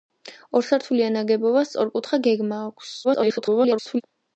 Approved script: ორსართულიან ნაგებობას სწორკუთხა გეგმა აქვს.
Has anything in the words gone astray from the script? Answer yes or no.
yes